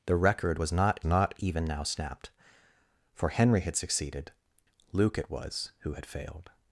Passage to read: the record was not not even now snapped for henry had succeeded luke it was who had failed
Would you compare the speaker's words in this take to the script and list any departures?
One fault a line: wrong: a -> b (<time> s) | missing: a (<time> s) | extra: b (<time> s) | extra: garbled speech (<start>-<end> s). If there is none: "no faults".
no faults